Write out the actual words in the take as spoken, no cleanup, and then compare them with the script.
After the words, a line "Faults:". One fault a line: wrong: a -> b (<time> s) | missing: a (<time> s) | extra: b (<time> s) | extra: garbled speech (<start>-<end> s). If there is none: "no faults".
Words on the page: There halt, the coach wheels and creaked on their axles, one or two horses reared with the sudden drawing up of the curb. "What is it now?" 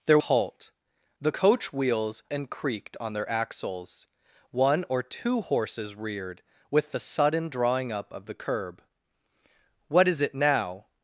There halt, the coach wheels and creaked on their axles, one or two horses reared with the sudden drawing up of the curb. "What is it now?"
Faults:
no faults